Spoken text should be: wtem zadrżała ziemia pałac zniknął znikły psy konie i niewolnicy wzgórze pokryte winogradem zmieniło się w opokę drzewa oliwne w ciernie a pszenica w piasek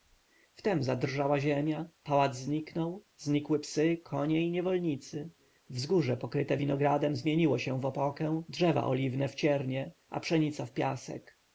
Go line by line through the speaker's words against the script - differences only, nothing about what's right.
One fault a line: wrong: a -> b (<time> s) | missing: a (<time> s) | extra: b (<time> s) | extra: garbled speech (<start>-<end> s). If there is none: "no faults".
no faults